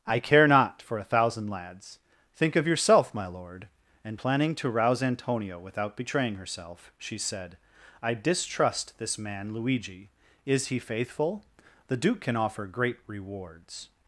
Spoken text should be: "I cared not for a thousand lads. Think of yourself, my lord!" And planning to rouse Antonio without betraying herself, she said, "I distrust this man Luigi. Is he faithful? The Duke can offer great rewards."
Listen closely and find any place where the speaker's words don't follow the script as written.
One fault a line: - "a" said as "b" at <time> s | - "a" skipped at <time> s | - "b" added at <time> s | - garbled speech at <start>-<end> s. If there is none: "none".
- "cared" said as "care" at 0.2 s